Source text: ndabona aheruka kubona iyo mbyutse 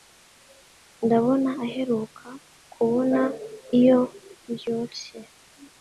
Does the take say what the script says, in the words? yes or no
yes